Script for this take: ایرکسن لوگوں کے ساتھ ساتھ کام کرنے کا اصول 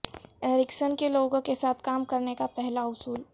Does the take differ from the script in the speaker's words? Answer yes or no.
yes